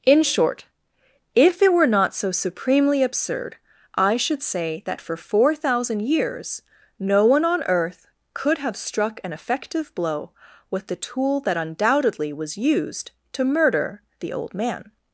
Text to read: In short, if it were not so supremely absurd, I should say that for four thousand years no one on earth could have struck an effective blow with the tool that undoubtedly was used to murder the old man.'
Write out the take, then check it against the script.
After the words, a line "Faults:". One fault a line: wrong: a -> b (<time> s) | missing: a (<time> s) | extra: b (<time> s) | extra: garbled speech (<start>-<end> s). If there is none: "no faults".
In short, if it were not so supremely absurd, I should say that for four thousand years no one on earth could have struck an effective blow with the tool that undoubtedly was used to murder the old man.'
Faults:
no faults